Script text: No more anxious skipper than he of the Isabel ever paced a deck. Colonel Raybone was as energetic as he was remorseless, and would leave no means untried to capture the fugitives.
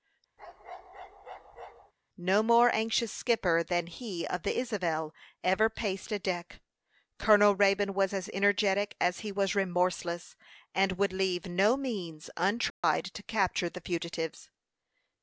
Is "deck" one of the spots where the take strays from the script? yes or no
no